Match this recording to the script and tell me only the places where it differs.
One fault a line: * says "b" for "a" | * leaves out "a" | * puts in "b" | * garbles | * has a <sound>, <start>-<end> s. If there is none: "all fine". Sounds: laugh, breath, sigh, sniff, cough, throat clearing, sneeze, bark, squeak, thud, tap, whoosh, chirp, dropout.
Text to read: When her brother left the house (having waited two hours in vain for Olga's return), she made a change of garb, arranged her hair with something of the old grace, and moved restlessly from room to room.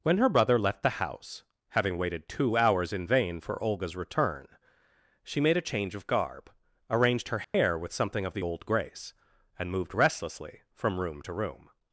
* has a dropout, 7.4-7.5 s